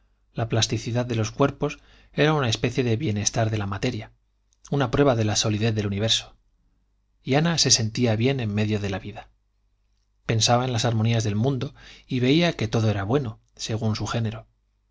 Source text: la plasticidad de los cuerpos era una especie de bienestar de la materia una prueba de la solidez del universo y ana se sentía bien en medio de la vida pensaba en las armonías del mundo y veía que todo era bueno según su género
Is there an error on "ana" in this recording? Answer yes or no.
no